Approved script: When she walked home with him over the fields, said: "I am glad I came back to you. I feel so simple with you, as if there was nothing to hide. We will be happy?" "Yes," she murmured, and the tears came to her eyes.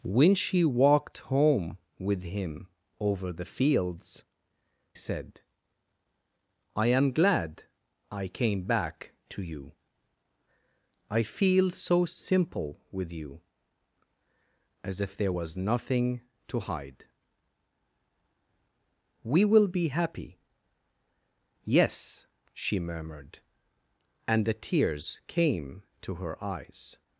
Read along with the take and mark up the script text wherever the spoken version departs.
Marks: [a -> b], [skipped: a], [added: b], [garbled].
When she walked home with him over the fields, said: "I am glad I came back to you. I feel so simple with you, as if there was nothing to hide. We will be happy?" "Yes," she murmured, and the tears came to her eyes.